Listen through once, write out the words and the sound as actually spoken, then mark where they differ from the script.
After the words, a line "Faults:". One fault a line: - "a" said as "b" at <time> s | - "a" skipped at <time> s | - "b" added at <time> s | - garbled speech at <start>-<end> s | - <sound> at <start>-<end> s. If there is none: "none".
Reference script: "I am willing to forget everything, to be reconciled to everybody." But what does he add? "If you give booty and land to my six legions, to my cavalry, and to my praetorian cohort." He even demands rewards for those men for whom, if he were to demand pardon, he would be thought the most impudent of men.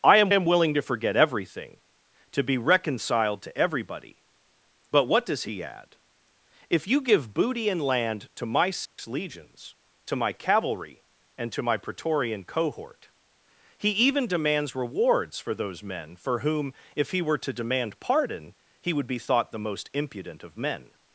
"I am am willing to forget everything, to be reconciled to everybody." But what does he add? "If you give booty and land to my six legions, to my cavalry, and to my praetorian cohort." He even demands rewards for those men for whom, if he were to demand pardon, he would be thought the most impudent of men.
Faults:
- "am" added at 0.3 s
- dropout at 8.9-9.0 s